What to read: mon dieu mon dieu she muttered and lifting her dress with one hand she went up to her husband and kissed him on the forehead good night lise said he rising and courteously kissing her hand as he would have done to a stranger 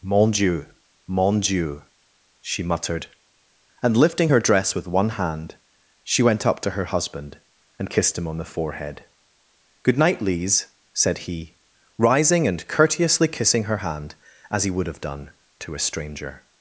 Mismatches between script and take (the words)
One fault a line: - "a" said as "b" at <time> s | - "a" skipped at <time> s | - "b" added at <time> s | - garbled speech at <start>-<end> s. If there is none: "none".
none